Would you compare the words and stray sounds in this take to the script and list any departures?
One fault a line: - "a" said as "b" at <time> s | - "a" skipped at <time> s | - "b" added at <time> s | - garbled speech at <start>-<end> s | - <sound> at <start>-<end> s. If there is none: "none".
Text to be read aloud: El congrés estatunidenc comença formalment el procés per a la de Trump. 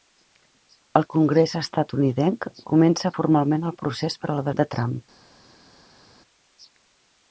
none